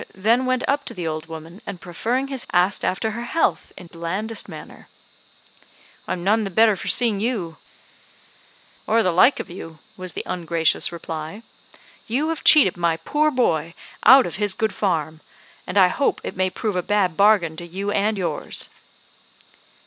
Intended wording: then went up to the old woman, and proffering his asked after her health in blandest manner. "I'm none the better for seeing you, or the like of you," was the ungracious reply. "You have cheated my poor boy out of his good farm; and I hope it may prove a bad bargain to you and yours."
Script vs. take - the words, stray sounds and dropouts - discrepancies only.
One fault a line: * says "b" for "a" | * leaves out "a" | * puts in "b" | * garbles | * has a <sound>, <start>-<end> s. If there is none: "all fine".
all fine